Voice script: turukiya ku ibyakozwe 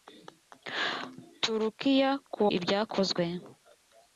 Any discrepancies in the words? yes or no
no